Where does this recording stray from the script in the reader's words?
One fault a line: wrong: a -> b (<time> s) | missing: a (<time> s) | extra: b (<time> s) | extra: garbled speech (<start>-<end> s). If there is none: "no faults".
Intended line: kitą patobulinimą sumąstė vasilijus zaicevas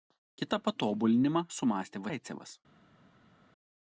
missing: vasilijus (2.0 s)